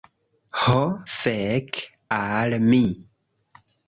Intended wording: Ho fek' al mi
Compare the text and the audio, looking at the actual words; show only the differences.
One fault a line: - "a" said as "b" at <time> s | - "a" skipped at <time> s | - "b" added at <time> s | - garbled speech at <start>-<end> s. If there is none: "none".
none